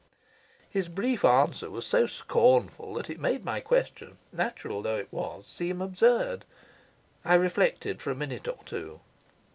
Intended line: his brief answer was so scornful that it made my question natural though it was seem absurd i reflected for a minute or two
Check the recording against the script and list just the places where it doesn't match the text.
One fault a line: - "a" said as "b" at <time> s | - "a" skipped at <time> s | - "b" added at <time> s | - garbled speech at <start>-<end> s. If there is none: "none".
none